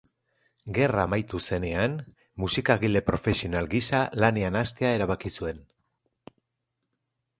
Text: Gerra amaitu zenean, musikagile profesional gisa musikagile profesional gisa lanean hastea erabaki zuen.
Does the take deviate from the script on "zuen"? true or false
false